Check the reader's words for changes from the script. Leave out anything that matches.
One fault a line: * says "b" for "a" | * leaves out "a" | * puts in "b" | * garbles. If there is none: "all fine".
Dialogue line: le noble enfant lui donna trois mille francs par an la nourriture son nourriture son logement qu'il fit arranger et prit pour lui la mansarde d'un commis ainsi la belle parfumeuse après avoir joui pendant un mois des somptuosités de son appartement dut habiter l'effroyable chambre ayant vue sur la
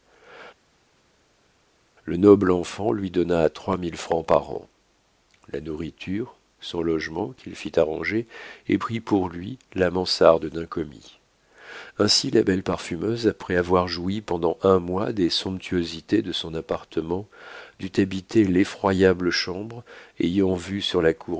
* leaves out "nourriture son"